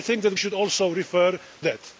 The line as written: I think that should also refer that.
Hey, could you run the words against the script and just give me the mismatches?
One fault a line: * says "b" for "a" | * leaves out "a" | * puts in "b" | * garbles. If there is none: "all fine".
all fine